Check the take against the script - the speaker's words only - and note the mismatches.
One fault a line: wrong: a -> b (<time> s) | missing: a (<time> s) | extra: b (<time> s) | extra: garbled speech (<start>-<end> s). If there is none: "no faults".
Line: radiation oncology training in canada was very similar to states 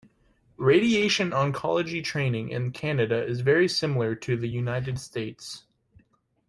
wrong: was -> is (3.2 s)
extra: the united (4.3 s)